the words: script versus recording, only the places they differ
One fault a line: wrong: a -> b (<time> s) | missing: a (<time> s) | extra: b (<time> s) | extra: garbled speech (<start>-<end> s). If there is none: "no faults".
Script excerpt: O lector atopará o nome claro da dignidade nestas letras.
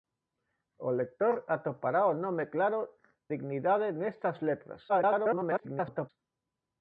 missing: da (2.8 s)
extra: garbled speech (4.9-6.1 s)